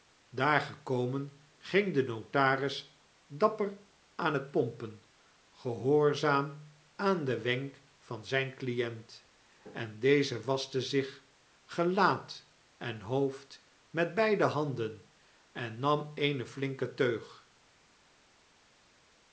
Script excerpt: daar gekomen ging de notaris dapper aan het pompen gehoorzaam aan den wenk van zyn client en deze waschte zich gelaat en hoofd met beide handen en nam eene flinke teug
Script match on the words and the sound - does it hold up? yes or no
yes